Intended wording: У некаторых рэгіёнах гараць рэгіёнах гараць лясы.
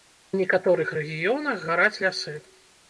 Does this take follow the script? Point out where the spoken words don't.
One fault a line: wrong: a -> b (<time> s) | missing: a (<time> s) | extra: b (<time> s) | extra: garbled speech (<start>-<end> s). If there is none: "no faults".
missing: рэгіёнах гараць (2.0 s)